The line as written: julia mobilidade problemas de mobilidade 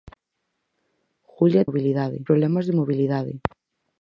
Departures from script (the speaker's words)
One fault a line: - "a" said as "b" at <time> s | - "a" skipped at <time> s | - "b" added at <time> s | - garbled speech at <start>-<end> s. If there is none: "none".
none